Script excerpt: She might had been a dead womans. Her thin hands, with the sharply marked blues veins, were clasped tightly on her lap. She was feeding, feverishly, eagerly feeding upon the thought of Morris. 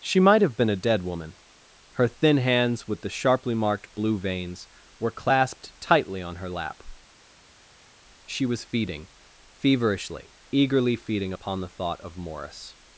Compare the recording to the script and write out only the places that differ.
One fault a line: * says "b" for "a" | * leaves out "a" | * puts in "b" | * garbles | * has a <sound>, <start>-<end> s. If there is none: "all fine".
* says "have" for "had"
* says "woman" for "womans"
* says "blue" for "blues"